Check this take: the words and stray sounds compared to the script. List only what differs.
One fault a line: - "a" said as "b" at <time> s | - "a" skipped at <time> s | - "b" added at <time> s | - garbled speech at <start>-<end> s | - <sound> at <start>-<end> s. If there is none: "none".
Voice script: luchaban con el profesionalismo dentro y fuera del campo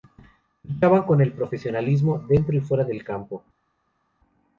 none